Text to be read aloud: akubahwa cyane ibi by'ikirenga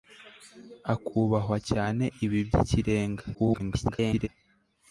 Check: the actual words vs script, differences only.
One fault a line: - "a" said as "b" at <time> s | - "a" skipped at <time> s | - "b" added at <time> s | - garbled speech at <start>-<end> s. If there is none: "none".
- garbled speech at 3.3-4.3 s